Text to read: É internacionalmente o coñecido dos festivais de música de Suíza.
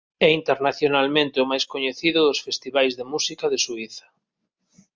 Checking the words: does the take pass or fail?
fail